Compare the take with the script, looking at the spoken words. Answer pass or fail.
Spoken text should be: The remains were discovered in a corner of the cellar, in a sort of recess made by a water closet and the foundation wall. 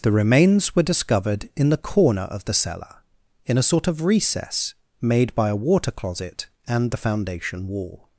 fail